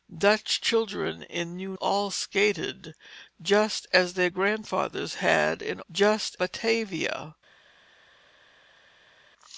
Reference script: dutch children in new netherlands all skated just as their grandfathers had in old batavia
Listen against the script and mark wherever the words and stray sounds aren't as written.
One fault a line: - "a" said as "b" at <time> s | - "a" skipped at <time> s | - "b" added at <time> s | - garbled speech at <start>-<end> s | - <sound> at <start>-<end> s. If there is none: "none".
- "netherlands" skipped at 1.8 s
- "old" said as "just" at 5.9 s